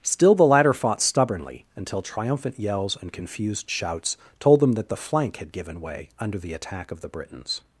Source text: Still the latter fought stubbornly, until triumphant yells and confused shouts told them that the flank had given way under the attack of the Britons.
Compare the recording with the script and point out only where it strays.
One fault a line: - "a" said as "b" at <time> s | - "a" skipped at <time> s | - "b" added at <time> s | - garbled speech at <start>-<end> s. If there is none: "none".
none